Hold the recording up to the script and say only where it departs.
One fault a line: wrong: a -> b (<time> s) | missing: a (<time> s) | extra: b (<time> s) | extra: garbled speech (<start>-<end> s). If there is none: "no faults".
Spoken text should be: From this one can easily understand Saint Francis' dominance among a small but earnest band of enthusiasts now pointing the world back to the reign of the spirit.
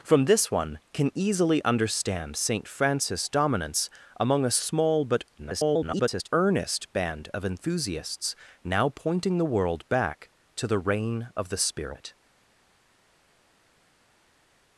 extra: garbled speech (5.4-6.3 s)